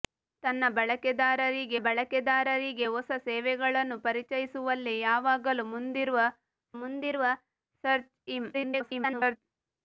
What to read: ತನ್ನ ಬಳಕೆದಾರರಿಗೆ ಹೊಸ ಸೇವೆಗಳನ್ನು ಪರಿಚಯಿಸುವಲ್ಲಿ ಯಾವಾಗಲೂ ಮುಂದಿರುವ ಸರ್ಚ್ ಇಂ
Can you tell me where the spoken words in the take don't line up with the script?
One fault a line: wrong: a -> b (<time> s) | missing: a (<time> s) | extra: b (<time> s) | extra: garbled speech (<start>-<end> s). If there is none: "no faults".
extra: ಬಳಕೆದಾರರಿಗೆ (1.8 s)
extra: ಮುಂದಿರುವ (6.7 s)
extra: garbled speech (8.5-9.4 s)